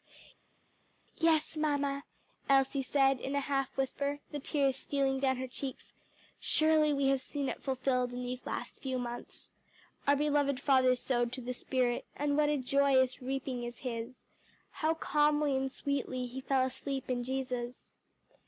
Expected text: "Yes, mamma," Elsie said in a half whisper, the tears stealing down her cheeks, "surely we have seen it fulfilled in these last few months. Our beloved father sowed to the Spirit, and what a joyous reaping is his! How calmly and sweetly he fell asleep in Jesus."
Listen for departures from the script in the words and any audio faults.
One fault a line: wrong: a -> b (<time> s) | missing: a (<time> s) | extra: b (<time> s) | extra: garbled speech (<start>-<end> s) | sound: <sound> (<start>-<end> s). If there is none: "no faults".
no faults